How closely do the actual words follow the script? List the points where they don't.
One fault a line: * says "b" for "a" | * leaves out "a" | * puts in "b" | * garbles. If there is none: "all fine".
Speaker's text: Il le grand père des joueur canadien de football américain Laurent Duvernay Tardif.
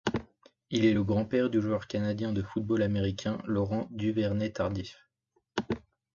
* puts in "est"
* says "du" for "des"